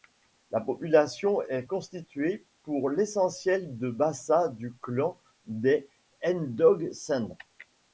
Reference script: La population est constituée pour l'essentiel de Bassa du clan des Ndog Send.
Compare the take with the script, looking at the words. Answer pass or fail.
pass